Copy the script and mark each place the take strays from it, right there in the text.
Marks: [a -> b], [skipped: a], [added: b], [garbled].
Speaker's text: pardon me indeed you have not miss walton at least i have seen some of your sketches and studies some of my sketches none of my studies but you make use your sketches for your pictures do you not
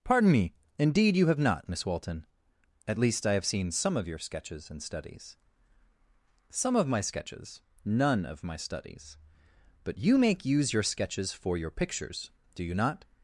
pardon me indeed you have not miss walton at least i have seen some of your sketches and studies some of my sketches none of my studies but you make use your sketches for your pictures do you not